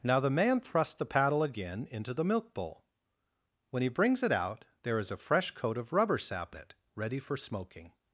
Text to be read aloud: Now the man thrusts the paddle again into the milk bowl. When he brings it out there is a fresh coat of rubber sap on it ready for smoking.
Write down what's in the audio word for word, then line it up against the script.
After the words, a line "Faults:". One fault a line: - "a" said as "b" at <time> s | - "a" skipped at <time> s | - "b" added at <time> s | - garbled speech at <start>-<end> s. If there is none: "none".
Now the man thrusts the paddle again into the milk bowl. When he brings it out there is a fresh coat of rubber sap it ready for smoking.
Faults:
- "on" skipped at 6.5 s